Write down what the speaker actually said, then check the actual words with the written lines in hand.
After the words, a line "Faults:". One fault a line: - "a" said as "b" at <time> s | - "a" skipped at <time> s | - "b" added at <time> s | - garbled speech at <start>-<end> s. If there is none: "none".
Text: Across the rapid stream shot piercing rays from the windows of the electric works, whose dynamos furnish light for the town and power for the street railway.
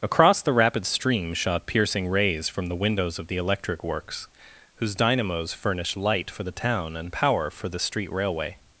Across the rapid stream shot piercing rays from the windows of the electric works, whose dynamos furnished light for the town and power for the street railway.
Faults:
- "furnish" said as "furnished" at 5.5 s